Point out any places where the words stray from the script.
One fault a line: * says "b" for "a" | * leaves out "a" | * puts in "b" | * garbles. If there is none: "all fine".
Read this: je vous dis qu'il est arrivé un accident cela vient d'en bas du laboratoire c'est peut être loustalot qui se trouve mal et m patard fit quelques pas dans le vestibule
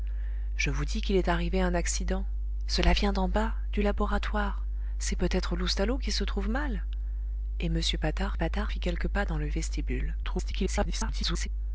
* puts in "patard"
* garbles